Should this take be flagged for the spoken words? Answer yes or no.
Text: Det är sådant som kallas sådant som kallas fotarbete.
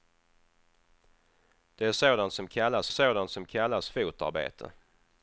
no